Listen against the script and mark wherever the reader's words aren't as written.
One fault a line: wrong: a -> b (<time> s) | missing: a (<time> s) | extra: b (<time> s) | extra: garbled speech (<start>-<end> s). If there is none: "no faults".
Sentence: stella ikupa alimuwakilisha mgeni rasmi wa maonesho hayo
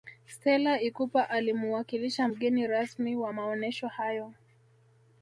no faults